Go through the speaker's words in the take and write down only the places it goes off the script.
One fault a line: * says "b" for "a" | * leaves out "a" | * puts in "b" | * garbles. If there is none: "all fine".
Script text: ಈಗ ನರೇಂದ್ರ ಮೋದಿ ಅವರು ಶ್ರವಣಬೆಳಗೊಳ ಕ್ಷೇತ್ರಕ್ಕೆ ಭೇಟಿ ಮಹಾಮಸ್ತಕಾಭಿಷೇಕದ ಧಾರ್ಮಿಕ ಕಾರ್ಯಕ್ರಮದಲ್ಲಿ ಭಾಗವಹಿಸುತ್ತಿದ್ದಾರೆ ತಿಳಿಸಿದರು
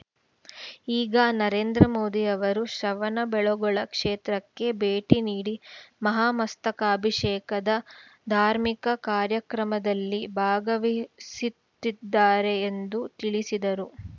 * puts in "ನೀಡಿ"
* puts in "ಎಂದು"